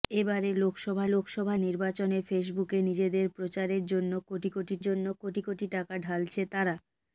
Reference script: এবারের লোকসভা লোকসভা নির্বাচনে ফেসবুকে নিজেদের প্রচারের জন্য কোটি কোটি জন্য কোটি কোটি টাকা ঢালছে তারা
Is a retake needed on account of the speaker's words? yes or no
no